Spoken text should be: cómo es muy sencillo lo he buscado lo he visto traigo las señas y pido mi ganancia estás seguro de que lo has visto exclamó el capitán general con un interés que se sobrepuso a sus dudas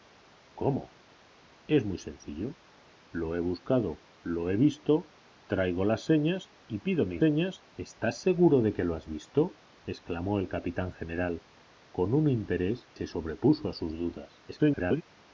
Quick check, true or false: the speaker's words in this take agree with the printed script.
false